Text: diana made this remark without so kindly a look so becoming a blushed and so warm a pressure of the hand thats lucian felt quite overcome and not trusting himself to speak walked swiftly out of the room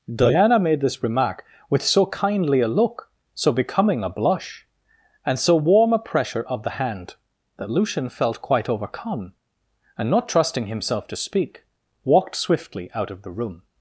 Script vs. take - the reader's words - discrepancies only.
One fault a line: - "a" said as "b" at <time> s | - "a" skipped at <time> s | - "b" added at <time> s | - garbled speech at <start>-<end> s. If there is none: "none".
- "without" said as "with" at 1.7 s
- "blushed" said as "blush" at 4.1 s
- "thats" said as "that" at 7.6 s